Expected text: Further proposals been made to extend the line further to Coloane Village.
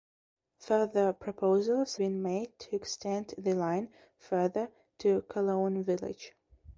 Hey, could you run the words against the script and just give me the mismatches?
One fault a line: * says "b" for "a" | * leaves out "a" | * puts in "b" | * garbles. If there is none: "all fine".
all fine